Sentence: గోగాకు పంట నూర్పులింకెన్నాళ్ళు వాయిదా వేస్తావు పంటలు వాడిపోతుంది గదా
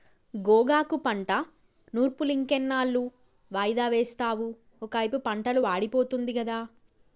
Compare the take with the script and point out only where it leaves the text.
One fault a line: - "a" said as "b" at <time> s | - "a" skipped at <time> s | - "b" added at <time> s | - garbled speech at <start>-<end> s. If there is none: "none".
- "ఒకైపు" added at 4.8 s